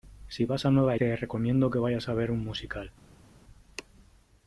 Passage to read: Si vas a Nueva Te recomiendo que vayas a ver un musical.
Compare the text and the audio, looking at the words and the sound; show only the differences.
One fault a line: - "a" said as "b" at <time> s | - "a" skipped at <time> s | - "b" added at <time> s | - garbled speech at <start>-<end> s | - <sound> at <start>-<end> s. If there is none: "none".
none